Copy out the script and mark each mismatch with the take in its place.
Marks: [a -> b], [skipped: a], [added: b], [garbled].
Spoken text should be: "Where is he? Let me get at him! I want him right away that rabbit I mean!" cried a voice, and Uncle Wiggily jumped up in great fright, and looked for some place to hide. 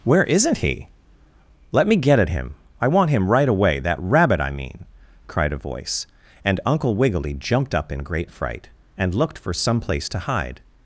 "Where [is -> isn't] he? Let me get at him! I want him right away that rabbit I mean!" cried a voice, and Uncle Wiggily jumped up in great fright, and looked for some place to hide.